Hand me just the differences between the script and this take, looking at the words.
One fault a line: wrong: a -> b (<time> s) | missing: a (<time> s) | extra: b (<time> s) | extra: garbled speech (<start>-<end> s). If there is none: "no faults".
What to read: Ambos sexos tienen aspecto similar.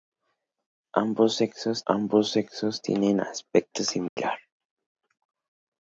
extra: ambos sexos (1.9 s)